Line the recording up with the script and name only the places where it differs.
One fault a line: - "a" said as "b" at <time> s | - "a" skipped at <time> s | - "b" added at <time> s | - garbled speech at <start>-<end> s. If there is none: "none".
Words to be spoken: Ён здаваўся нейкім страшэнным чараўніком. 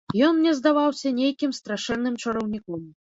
- "мне" added at 0.4 s